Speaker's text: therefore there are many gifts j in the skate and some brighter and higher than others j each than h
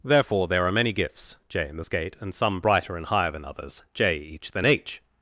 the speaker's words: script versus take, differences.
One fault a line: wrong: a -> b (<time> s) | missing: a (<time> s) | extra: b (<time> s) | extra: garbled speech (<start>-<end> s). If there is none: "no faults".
no faults